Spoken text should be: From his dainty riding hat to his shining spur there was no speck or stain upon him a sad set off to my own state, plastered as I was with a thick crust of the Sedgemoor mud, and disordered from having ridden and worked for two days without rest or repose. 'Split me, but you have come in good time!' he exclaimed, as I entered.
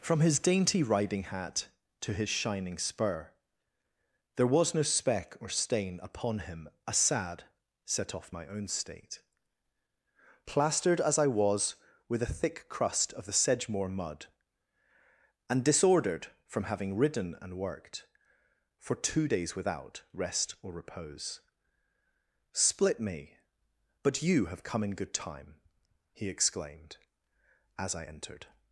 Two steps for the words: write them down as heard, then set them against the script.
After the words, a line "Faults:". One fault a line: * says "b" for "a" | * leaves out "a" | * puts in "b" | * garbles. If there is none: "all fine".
From his dainty riding hat to his shining spur there was no speck or stain upon him a sad set off my own state, plastered as I was with a thick crust of the Sedgemoor mud, and disordered from having ridden and worked for two days without rest or repose. 'Split me, but you have come in good time!' he exclaimed, as I entered.
Faults:
* leaves out "to"